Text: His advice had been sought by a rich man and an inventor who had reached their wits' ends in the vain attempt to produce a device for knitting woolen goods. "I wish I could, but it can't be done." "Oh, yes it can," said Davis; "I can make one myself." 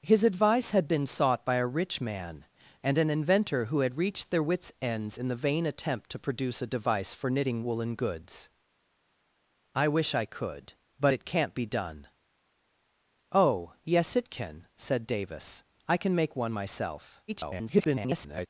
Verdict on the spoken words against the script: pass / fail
fail